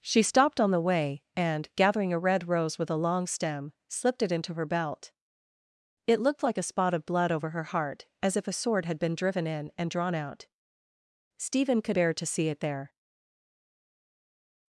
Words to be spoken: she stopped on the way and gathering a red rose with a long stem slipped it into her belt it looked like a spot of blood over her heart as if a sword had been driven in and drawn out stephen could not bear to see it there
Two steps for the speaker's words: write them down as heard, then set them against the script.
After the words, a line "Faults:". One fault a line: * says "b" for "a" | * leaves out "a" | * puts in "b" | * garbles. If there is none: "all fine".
she stopped on the way and gathering a red rose with a long stem slipped it into her belt it looked like a spot of blood over her heart as if a sword had been driven in and drawn out stephen could bear to see it there
Faults:
* leaves out "not"